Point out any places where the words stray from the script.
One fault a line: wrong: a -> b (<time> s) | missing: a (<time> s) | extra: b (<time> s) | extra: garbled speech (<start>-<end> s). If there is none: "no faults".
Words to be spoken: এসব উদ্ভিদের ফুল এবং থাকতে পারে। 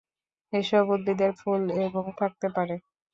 no faults